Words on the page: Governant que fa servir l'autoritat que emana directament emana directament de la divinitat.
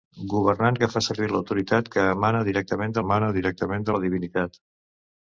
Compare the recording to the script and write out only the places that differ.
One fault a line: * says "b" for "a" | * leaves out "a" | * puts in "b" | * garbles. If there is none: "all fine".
all fine